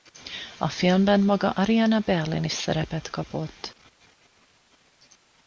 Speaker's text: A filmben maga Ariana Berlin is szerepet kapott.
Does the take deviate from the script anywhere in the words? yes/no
no